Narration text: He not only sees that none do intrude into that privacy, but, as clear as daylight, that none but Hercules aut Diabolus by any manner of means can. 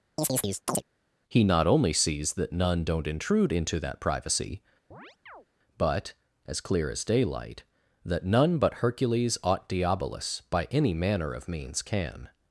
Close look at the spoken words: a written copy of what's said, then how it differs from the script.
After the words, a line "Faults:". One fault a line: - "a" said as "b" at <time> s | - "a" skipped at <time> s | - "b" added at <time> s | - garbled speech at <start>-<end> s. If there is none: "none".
He not only sees that none don't intrude into that privacy, but, as clear as daylight, that none but Hercules aut Diabolus by any manner of means can.
Faults:
- "do" said as "don't" at 2.8 s